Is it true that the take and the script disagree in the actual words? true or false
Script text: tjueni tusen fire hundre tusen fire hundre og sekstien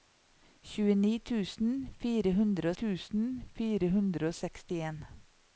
false